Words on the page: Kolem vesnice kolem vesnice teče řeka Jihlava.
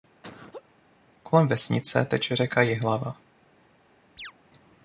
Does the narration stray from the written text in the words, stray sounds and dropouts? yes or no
yes